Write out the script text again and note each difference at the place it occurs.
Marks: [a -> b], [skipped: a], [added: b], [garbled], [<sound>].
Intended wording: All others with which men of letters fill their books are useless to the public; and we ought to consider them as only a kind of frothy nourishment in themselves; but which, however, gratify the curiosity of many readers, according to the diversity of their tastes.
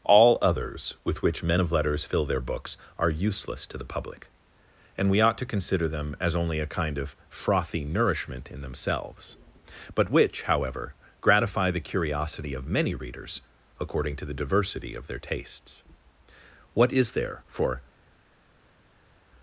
All others with which men of letters fill their books are useless to the public; and we ought to consider them as only a kind of frothy nourishment in themselves; but which, however, gratify the curiosity of many readers, according to the diversity of their tastes. [added: What is there for]